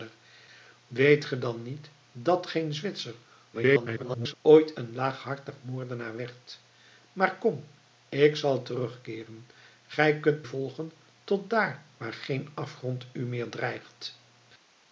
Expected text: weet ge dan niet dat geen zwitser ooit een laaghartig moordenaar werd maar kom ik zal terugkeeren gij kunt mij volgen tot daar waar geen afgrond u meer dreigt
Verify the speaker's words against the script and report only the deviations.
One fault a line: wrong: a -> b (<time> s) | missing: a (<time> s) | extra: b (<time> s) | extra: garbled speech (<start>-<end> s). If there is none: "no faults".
extra: garbled speech (3.5-4.3 s)
missing: mij (10.5 s)